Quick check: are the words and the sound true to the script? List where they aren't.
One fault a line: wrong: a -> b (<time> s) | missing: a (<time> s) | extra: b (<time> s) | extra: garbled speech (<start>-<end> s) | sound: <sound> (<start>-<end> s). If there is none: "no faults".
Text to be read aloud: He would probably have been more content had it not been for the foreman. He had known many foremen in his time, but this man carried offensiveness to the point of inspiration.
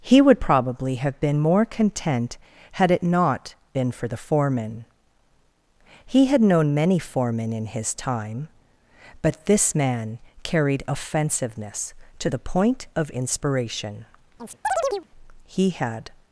sound: chirp (14.4-15.1 s)
extra: He had (15.4 s)